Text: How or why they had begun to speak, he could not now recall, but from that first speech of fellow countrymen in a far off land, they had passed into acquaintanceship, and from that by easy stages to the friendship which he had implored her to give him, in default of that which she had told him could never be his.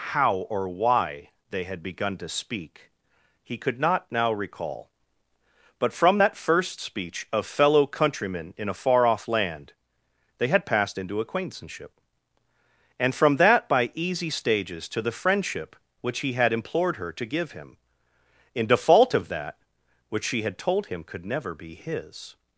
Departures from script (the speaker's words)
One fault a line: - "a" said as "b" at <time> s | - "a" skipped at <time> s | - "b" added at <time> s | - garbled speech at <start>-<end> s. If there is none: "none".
none